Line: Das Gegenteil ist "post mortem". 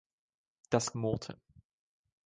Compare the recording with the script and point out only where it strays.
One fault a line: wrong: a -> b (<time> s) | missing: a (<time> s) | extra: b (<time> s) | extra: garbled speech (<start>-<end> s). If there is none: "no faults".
missing: Gegenteil ist post (0.9 s)